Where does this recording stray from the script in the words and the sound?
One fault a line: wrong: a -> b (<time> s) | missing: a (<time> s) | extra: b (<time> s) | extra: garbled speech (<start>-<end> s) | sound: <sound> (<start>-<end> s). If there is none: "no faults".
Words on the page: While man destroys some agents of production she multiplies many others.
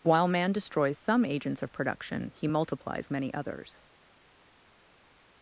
wrong: she -> he (2.4 s)